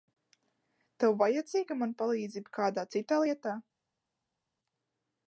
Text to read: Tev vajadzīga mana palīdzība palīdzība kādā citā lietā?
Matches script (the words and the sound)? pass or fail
fail